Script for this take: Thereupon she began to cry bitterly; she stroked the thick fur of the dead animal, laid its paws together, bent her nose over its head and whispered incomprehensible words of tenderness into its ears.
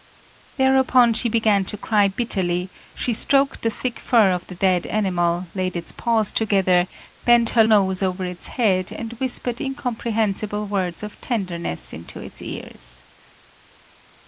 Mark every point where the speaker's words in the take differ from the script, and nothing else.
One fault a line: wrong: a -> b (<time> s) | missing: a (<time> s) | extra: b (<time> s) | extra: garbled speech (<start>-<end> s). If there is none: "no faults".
no faults